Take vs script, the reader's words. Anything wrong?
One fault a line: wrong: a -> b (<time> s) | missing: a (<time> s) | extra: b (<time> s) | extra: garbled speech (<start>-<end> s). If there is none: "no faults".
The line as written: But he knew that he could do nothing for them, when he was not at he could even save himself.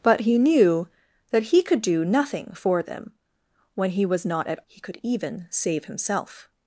no faults